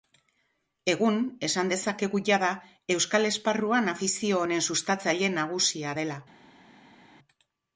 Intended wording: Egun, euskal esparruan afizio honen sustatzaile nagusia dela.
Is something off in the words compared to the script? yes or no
yes